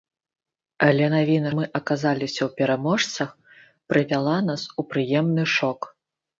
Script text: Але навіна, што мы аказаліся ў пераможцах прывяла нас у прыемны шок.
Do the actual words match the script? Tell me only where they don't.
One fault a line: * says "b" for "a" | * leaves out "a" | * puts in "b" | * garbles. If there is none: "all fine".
* leaves out "што"